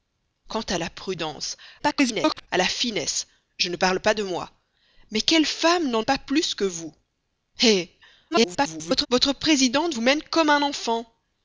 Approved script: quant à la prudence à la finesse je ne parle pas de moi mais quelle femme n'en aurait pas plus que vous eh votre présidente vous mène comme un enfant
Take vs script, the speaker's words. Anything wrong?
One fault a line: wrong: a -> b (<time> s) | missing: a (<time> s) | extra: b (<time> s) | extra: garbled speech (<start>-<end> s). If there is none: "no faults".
extra: garbled speech (1.8-2.5 s)
missing: aurait (6.1 s)
extra: garbled speech (8.3-9.1 s)